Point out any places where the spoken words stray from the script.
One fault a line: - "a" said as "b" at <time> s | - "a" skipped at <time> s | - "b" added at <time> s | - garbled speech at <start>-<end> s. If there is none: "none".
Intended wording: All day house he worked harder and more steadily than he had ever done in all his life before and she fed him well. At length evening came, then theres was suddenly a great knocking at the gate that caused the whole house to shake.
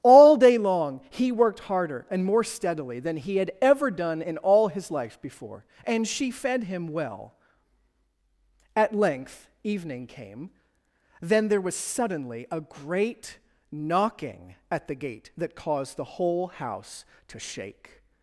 - "house" said as "long" at 0.6 s
- "theres" said as "there" at 11.5 s